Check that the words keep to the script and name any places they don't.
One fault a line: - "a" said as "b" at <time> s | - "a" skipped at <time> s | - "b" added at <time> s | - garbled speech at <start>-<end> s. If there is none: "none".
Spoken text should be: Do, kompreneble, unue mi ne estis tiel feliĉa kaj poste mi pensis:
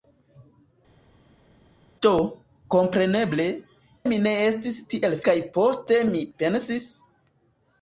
- "unue" skipped at 3.4 s
- "feliĉa" skipped at 5.2 s